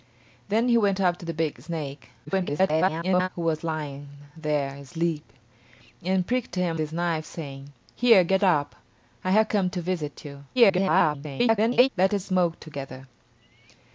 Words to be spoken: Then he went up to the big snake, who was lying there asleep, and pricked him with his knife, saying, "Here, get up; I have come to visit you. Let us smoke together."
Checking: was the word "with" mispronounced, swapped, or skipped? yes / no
yes